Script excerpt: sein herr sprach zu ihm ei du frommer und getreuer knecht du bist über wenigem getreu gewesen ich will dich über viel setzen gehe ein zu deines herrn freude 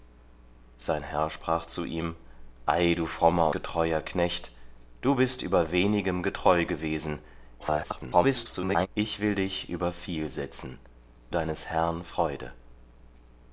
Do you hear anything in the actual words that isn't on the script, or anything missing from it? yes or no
yes